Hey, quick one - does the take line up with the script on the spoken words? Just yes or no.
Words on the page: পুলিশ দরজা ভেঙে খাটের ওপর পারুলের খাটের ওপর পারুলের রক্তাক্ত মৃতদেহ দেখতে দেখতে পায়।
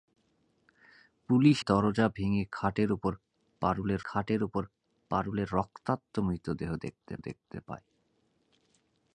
yes